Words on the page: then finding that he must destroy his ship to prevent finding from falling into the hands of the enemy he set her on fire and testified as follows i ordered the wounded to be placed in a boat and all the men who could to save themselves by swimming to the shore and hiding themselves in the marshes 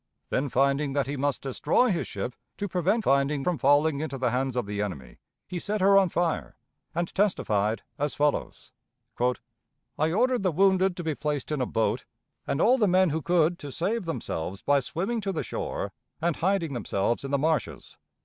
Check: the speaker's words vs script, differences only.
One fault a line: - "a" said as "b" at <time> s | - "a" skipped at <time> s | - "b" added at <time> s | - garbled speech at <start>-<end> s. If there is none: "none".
none